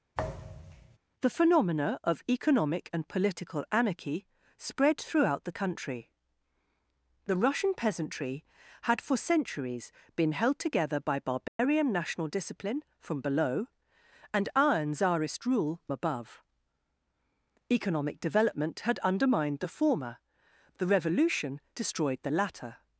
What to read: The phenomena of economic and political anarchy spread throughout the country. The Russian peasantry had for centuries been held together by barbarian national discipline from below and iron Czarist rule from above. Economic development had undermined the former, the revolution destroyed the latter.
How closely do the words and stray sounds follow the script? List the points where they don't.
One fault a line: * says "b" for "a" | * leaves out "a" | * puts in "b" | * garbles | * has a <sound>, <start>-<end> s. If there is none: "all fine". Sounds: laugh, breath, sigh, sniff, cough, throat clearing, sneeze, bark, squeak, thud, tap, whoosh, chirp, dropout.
* has a thud, 0.1-1.0 s
* has a dropout, 11.5-11.6 s
* leaves out "from"